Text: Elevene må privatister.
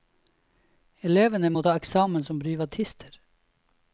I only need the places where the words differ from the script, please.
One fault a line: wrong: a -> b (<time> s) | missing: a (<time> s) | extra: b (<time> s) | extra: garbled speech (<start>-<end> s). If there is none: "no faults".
extra: ta eksamen som (1.6 s)